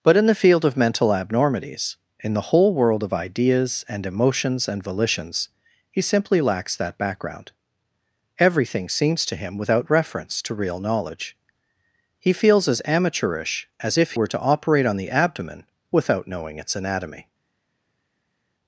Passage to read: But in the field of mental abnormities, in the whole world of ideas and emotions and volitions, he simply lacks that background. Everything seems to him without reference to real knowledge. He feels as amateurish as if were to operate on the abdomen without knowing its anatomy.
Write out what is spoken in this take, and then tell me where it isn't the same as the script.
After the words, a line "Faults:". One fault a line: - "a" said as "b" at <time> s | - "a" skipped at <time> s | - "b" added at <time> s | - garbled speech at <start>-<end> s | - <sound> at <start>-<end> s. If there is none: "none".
But in the field of mental abnormities, in the whole world of ideas and emotions and volitions, he simply lacks that background. Everything seems to him without reference to real knowledge. He feels as amateurish as if were to operate on the abdomen without knowing its anatomy.
Faults:
none